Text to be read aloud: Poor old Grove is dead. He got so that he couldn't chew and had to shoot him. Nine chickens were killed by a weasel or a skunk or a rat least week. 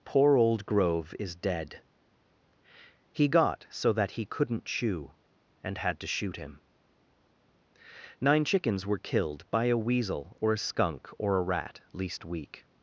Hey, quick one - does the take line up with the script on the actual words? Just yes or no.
yes